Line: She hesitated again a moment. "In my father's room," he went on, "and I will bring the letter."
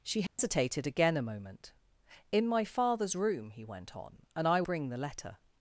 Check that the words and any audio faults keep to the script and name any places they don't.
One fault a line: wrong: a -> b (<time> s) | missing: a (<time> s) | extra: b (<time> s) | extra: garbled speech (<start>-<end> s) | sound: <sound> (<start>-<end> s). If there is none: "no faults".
sound: dropout (0.3-0.4 s)
missing: will (4.6 s)